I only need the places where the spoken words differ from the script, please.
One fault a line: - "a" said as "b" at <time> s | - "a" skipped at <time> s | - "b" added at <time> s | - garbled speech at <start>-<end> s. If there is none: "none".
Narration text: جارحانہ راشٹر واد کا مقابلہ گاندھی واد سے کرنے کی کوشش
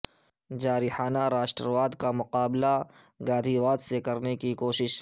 none